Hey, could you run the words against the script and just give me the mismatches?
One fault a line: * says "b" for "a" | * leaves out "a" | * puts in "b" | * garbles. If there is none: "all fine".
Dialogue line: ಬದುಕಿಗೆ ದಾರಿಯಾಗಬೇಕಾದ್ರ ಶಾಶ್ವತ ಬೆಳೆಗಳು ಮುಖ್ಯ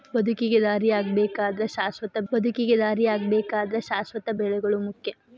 * puts in "ಬದುಕಿಗೆ ದಾರಿಯಾಗಬೇಕಾದ್ರ ಶಾಶ್ವತ"